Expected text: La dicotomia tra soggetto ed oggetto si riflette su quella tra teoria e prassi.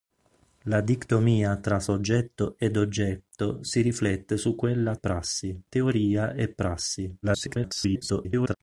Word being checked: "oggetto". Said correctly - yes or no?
yes